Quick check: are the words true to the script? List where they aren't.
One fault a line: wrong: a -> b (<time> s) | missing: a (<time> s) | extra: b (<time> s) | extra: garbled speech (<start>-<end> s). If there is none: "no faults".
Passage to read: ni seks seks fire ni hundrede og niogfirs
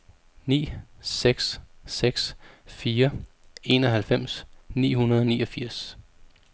extra: enoghalvfems (3.6 s)